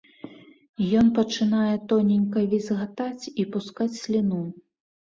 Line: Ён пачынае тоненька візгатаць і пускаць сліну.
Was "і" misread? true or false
false